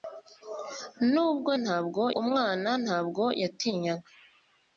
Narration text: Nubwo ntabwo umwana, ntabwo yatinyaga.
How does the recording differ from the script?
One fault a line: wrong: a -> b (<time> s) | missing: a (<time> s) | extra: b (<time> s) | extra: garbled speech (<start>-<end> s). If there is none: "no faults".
no faults